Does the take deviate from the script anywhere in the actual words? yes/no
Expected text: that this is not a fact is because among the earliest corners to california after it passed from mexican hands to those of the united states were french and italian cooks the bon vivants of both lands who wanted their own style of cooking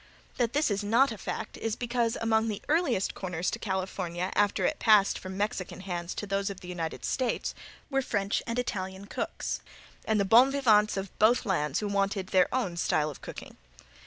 yes